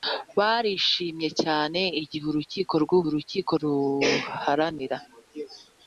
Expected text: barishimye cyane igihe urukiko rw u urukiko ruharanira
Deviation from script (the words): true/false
false